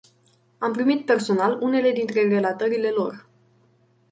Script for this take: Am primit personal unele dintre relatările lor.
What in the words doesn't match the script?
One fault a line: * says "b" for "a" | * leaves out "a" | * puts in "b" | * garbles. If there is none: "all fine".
all fine